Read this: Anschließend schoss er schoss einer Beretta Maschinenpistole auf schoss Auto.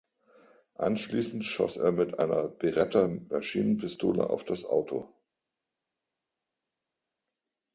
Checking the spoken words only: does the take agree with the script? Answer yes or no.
no